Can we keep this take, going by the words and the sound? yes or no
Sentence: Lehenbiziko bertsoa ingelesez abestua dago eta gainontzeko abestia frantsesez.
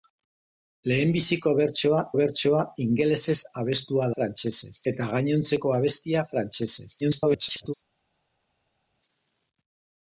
no